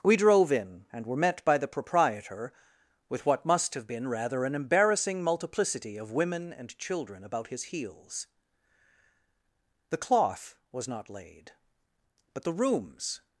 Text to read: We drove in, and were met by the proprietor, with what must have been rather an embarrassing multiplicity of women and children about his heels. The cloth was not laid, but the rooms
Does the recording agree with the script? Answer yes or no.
yes